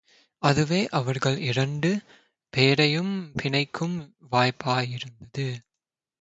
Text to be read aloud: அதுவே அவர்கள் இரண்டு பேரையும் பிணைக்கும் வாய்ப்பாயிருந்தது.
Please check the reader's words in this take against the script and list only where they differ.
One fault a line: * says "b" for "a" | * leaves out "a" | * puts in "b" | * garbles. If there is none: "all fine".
all fine